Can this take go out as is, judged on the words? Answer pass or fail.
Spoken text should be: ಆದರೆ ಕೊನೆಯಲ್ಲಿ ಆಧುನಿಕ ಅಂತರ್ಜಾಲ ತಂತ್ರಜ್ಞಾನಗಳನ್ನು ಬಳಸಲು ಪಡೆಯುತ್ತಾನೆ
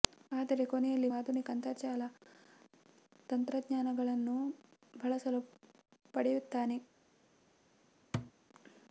pass